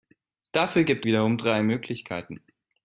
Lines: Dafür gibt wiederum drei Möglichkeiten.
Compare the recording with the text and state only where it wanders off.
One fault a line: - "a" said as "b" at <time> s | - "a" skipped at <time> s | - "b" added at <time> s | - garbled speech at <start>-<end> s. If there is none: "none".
none